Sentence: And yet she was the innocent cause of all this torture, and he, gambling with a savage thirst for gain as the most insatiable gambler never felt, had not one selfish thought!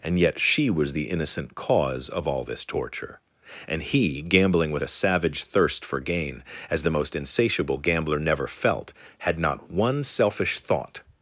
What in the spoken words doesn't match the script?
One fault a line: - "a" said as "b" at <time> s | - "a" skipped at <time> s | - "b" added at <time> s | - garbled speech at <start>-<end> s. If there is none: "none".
none